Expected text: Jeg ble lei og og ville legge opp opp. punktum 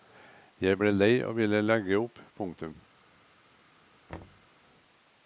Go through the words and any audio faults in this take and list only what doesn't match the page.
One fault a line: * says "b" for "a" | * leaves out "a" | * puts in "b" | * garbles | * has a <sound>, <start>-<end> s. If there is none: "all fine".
* leaves out "og"
* leaves out "opp"
* has a thud, 4.1-4.5 s